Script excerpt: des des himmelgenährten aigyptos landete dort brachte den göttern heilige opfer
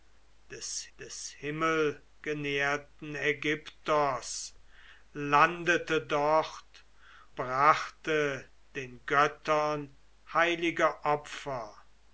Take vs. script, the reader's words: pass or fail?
pass